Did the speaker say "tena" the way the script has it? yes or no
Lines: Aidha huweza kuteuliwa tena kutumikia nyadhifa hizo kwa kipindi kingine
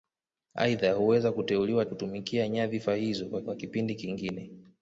no